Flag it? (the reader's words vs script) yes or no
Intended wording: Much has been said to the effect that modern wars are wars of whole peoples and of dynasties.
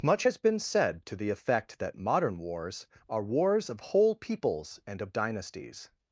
no